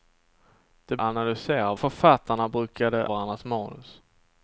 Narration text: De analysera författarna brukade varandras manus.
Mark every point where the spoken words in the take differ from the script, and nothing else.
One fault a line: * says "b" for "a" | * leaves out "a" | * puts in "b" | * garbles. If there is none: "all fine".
all fine